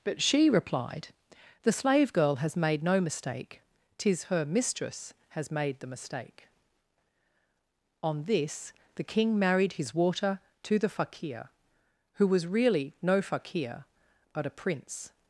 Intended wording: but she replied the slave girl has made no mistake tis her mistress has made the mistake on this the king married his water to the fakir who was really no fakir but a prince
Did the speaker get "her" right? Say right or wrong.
right